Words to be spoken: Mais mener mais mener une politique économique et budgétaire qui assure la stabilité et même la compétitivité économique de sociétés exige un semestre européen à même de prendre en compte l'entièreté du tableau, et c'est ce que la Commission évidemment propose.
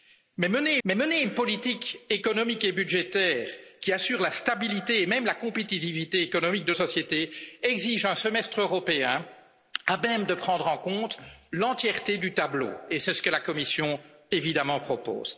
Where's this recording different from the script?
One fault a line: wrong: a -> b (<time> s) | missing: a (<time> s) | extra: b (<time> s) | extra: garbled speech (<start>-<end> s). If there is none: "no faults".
no faults